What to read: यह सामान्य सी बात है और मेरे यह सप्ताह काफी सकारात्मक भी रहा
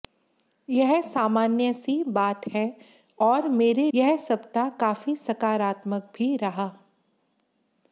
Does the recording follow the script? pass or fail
pass